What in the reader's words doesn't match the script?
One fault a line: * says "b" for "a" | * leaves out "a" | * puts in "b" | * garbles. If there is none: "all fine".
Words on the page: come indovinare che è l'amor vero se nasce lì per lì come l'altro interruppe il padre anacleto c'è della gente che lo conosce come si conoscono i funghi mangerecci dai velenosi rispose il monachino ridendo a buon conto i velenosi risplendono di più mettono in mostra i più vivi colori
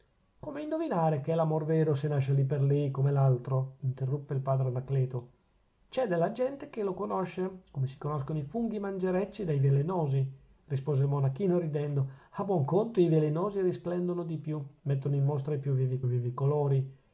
* puts in "vivi"